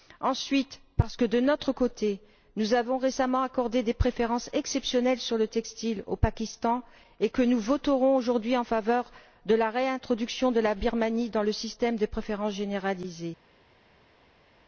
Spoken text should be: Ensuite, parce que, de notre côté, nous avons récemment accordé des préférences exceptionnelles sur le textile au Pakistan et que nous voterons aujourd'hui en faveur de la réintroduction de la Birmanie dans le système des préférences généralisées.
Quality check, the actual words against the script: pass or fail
pass